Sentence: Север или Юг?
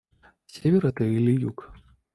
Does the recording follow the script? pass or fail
fail